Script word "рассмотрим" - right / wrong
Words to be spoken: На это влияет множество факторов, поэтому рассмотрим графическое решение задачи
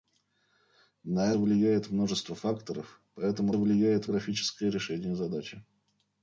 wrong